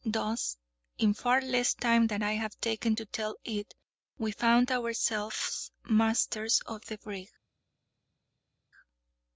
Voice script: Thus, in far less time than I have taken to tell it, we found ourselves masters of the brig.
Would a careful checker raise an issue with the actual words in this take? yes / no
no